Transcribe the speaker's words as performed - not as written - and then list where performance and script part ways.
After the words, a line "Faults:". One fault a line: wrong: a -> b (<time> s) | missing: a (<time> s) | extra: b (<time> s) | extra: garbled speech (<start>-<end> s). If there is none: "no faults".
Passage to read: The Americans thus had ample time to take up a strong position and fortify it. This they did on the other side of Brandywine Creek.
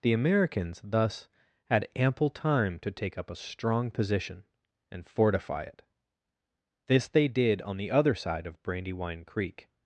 The Americans thus had ample time to take up a strong position and fortify it. This they did on the other side of Brandywine Creek.
Faults:
no faults